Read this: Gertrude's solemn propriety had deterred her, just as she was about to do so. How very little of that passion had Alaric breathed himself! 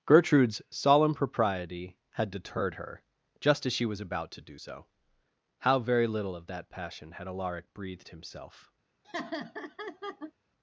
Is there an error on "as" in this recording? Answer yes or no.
no